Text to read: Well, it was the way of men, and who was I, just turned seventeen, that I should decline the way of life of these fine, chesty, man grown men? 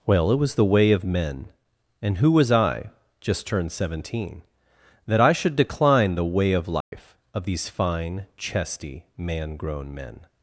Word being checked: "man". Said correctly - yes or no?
yes